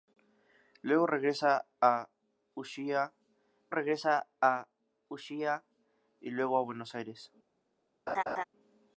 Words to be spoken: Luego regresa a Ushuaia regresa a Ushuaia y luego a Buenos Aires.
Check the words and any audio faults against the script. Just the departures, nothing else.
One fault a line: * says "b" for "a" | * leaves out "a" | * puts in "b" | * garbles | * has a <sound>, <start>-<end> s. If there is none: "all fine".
* has a laugh, 8.1-8.4 s